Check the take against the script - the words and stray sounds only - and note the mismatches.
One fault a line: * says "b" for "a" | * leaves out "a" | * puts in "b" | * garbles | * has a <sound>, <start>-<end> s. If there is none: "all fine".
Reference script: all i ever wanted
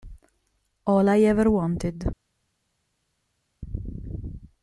all fine